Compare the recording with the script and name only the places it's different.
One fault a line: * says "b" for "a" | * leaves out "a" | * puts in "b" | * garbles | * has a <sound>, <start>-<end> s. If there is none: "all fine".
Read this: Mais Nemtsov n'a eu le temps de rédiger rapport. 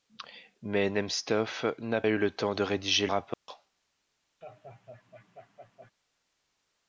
* has a dropout, 3.3-3.5 s
* has a laugh, 4.4-5.9 s